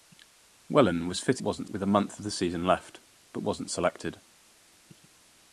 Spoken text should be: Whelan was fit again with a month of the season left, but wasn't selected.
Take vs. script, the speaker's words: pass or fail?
fail